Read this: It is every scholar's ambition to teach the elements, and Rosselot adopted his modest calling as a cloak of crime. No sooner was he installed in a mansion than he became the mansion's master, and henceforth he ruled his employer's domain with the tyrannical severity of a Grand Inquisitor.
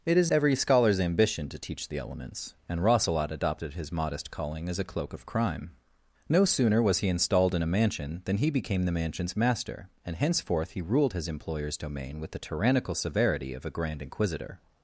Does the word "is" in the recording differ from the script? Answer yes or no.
no